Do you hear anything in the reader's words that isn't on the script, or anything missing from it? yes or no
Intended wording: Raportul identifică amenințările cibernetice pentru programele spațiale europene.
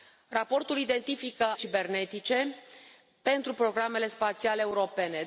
yes